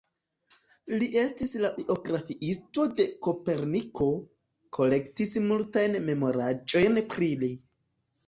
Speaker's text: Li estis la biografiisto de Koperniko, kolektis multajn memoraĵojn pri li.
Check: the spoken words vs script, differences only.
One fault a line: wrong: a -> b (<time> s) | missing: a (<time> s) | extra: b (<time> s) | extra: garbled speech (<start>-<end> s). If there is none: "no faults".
no faults